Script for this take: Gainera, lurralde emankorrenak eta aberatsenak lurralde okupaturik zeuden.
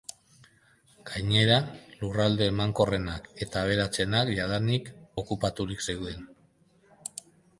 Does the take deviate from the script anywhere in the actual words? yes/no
yes